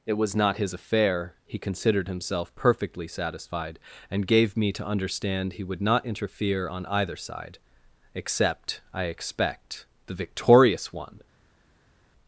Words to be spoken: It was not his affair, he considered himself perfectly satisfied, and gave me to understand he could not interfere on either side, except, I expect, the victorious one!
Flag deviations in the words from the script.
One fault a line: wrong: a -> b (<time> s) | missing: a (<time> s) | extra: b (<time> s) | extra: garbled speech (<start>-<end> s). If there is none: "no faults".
wrong: could -> would (5.6 s)